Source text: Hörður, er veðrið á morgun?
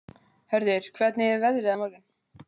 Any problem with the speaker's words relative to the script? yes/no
yes